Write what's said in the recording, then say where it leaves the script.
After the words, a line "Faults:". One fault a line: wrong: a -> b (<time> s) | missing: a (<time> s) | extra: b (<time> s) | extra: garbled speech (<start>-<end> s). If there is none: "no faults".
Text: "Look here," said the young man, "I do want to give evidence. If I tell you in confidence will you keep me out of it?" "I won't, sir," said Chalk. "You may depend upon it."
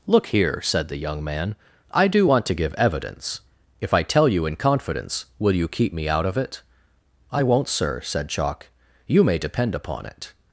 "Look here," said the young man, "I do want to give evidence. If I tell you in confidence will you keep me out of it?" "I won't, sir," said Chalk. "You may depend upon it."
Faults:
no faults